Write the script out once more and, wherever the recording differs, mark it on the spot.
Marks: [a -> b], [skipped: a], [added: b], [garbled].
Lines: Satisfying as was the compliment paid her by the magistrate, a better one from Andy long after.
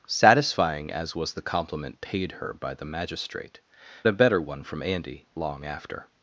Satisfying as was the compliment paid her by the magistrate, a better one from Andy long after.